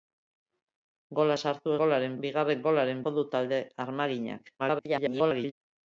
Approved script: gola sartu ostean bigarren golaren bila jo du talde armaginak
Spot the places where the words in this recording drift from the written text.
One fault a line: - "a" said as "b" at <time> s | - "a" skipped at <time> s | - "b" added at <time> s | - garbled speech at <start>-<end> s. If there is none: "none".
- "ostean" said as "golaren" at 1.8 s
- "bila" skipped at 3.0 s
- garbled speech at 4.6-5.5 s